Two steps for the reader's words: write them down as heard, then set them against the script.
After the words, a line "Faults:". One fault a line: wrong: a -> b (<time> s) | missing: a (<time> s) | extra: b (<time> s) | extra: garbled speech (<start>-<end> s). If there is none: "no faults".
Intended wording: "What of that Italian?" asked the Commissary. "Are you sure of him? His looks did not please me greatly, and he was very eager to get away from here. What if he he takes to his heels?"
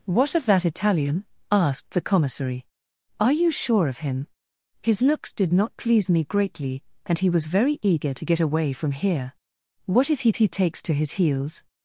"What of that Italian?" asked the Commissary. "Are you sure of him? His looks did not please me greatly, and he was very eager to get away from here. What if he he takes to his heels?"
Faults:
no faults